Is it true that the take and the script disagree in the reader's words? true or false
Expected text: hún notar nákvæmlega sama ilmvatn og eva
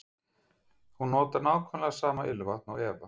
false